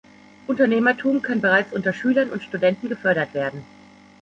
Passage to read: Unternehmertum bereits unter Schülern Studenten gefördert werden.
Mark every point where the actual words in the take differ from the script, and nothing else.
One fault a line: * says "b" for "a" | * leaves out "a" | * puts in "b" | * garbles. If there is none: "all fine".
* puts in "kann"
* puts in "und"